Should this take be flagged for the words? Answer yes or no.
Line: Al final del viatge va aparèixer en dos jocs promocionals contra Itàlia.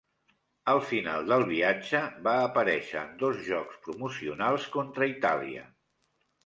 no